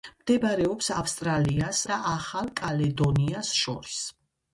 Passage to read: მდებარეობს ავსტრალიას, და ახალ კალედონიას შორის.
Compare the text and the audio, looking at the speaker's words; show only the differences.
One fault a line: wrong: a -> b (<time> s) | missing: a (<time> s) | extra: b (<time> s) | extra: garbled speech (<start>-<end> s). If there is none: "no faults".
no faults